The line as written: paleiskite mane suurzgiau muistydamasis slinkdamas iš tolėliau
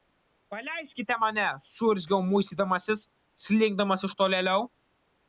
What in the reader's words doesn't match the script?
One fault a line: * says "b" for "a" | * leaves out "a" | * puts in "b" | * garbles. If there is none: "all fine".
all fine